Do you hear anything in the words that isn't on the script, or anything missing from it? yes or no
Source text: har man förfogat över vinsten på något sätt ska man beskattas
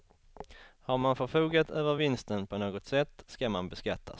no